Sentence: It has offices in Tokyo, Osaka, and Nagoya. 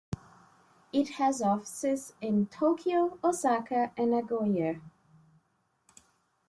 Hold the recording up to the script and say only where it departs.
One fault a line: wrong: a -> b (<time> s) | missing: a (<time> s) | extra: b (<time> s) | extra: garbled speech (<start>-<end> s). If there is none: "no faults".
no faults